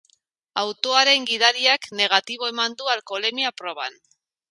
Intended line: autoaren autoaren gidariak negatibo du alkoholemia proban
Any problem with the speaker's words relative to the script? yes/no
yes